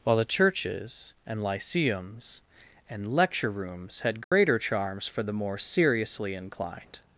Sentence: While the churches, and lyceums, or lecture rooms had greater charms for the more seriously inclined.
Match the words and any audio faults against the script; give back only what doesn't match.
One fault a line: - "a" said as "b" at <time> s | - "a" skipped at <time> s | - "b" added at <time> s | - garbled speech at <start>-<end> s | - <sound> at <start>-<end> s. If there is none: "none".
- "or" said as "and" at 2.9 s
- dropout at 4.2-4.3 s